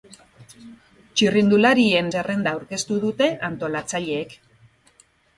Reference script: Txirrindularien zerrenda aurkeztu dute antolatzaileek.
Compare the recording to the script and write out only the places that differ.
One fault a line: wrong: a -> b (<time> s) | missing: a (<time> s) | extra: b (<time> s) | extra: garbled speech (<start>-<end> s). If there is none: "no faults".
no faults